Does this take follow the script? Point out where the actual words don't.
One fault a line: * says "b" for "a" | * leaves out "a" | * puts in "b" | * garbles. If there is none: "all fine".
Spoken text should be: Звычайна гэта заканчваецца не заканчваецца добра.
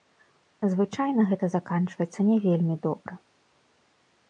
* says "вельмі" for "заканчваецца"